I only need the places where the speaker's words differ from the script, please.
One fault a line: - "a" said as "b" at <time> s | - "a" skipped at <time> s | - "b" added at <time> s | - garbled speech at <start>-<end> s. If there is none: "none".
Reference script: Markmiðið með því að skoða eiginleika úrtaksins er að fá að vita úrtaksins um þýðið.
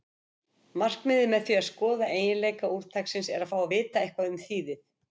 - "úrtaksins" said as "eitthvað" at 4.1 s